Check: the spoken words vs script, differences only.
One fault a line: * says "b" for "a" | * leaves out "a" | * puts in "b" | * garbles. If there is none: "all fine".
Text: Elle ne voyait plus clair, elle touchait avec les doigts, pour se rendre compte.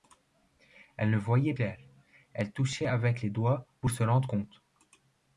* leaves out "plus"